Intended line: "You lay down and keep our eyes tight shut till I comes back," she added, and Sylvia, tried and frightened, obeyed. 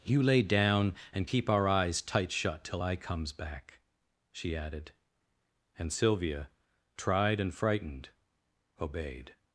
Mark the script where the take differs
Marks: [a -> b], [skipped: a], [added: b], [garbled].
"You lay down and keep our eyes tight shut till I comes back," she added, and Sylvia, tried and frightened, obeyed.